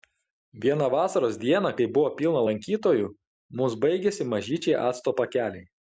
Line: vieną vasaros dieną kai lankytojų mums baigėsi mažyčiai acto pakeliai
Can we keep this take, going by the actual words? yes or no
no